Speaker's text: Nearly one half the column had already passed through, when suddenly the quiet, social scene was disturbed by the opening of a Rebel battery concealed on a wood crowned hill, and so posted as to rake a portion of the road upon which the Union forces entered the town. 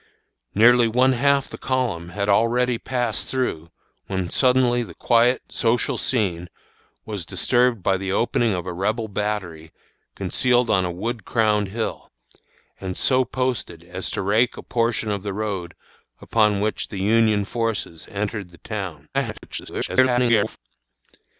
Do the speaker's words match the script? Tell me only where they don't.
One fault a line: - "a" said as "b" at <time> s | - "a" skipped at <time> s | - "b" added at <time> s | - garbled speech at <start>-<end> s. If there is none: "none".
- garbled speech at 19.1-20.6 s